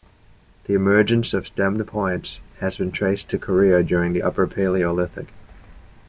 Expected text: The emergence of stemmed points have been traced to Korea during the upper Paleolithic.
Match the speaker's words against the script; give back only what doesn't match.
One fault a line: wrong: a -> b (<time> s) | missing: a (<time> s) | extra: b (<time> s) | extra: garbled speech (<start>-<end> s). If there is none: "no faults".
wrong: have -> has (2.6 s)